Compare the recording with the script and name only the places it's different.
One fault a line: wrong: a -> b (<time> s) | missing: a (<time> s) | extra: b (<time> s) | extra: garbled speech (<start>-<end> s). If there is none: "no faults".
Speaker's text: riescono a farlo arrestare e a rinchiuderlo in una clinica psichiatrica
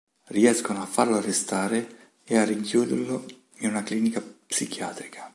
no faults